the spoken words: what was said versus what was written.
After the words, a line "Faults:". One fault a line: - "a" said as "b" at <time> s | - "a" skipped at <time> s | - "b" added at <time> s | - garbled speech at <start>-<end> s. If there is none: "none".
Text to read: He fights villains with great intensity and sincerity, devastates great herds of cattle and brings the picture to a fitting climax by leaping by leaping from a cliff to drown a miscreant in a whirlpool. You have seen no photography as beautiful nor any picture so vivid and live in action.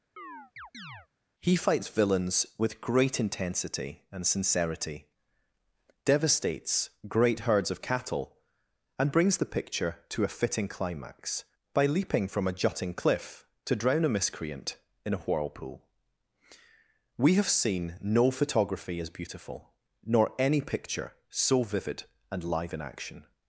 He fights villains with great intensity and sincerity, devastates great herds of cattle and brings the picture to a fitting climax by leaping from a jutting cliff to drown a miscreant in a whirlpool. We have seen no photography as beautiful nor any picture so vivid and live in action.
Faults:
- "by leaping" skipped at 12.3 s
- "jutting" added at 12.5 s
- "You" said as "We" at 17.2 s